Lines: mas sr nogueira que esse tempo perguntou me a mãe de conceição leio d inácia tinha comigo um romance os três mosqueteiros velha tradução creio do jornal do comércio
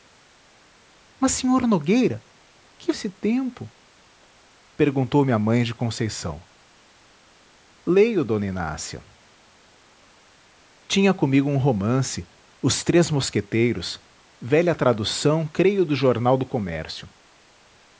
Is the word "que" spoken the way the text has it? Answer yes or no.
yes